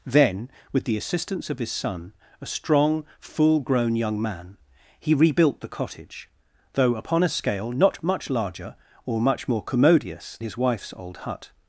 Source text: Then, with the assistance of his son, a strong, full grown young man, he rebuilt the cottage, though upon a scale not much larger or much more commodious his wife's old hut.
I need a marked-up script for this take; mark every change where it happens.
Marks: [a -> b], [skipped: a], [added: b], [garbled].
Then, with the assistance of his son, a strong, full grown young man, he rebuilt the cottage, though upon a scale not much larger or much more commodious his wife's old hut.